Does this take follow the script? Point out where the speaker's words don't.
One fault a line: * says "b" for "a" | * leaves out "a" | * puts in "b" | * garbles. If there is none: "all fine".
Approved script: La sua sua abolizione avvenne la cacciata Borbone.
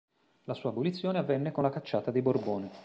* leaves out "sua"
* puts in "con"
* puts in "dei"